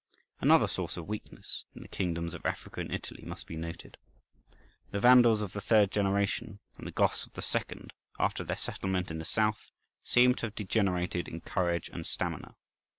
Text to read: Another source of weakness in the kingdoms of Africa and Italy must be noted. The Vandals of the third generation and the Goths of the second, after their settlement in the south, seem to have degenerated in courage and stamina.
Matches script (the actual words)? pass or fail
pass